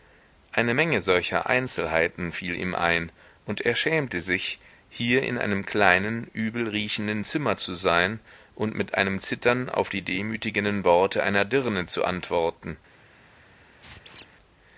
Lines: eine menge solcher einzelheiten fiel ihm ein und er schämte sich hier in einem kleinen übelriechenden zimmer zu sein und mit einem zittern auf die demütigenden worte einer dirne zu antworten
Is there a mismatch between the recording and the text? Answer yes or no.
no